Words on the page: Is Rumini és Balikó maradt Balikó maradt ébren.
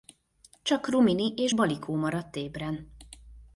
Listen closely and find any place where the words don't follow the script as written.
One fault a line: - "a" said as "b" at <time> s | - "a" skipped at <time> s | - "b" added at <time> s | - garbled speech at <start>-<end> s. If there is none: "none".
- "Is" said as "Csak" at 0.6 s
- "Balikó maradt" skipped at 2.4 s